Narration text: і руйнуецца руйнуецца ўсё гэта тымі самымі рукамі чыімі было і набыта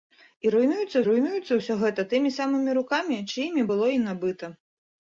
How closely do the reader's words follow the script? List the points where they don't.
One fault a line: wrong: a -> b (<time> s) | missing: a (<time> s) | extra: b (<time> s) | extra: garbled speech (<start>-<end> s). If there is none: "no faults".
no faults